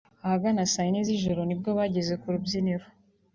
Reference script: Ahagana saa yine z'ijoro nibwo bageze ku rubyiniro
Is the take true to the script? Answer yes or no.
yes